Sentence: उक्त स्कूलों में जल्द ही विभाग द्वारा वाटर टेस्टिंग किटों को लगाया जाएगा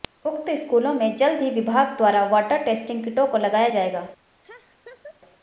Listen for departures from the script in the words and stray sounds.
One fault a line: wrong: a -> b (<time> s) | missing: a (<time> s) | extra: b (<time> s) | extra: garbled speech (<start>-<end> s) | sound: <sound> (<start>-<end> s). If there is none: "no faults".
sound: laugh (4.4-5.2 s)